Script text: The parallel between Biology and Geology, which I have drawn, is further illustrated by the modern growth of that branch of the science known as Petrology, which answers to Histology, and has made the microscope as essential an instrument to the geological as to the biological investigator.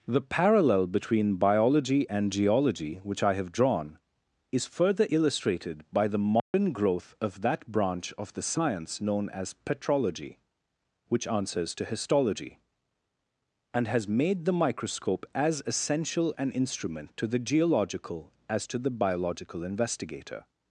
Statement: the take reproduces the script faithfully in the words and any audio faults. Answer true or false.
false